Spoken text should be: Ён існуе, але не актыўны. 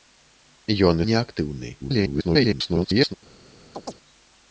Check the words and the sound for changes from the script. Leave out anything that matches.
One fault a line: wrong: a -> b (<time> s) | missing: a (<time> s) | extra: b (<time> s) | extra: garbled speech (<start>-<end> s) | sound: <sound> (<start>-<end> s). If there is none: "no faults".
missing: існуе але (1.0 s)
extra: garbled speech (1.8-3.1 s)
sound: chirp (3.7-3.9 s)